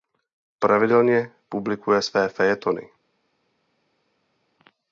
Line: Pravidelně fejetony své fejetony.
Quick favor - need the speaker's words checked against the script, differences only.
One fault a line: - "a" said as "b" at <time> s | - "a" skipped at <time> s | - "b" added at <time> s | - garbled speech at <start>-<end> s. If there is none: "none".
- "fejetony" said as "publikuje" at 1.5 s